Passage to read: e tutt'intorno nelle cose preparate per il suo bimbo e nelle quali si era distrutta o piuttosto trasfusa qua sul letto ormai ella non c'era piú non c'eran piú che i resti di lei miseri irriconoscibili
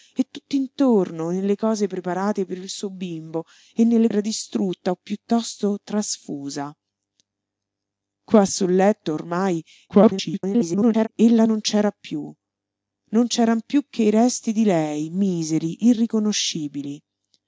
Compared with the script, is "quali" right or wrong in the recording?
wrong